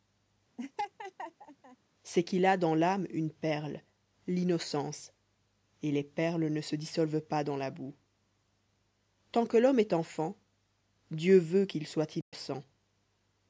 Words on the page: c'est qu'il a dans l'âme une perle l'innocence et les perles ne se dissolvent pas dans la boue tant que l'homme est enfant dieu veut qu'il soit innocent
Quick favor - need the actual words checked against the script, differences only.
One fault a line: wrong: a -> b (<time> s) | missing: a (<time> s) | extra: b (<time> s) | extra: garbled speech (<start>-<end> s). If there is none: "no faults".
no faults